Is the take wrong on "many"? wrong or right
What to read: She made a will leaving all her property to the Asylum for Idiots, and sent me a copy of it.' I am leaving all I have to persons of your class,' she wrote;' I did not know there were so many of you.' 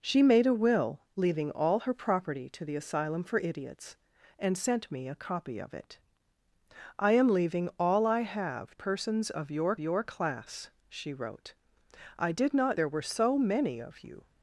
right